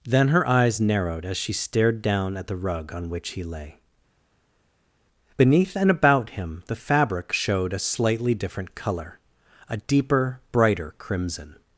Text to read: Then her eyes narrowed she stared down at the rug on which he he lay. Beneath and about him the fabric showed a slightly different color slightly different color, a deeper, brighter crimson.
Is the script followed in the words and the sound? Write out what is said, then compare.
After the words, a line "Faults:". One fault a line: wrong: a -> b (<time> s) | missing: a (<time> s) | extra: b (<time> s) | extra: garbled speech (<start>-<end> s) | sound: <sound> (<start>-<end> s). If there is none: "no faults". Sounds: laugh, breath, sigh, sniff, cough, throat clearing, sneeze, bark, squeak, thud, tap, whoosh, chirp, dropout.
Then her eyes narrowed as she stared down at the rug on which he lay. Beneath and about him the fabric showed a slightly different color, a deeper, brighter crimson.
Faults:
extra: as (1.2 s)
missing: he (3.4 s)
missing: slightly different color (9.2 s)